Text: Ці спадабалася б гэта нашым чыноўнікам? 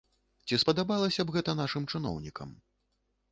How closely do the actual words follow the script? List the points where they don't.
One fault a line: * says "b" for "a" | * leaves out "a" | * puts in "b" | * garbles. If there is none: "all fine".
all fine